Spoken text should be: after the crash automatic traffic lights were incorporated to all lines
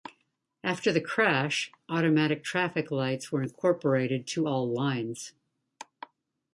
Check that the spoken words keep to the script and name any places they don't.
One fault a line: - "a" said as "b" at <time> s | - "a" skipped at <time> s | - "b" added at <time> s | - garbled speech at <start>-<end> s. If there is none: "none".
none